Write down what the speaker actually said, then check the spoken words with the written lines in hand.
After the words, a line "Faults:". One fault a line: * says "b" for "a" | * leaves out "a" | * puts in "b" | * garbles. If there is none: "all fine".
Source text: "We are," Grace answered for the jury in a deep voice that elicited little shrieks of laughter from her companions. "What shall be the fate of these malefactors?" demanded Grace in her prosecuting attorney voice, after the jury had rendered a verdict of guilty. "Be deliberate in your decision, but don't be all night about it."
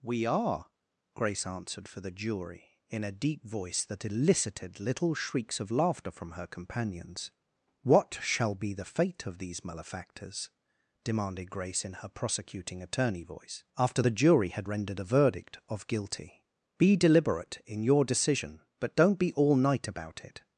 "We are," Grace answered for the jury in a deep voice that elicited little shrieks of laughter from her companions. "What shall be the fate of these malefactors?" demanded Grace in her prosecuting attorney voice, after the jury had rendered a verdict of guilty. "Be deliberate in your decision, but don't be all night about it."
Faults:
all fine